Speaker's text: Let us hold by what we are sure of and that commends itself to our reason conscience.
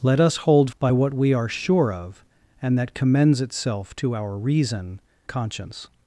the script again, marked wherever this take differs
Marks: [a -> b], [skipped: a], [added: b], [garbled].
Let us hold by what we are sure of and that commends itself to our reason conscience.